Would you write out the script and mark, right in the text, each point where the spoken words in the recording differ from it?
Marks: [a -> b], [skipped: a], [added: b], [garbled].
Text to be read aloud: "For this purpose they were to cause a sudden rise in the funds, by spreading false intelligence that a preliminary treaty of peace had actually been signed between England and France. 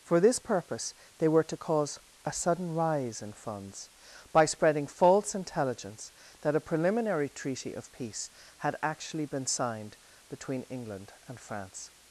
"For this purpose they were to cause a sudden rise in [skipped: the] funds, by spreading false intelligence that a preliminary treaty of peace had actually been signed between England and France.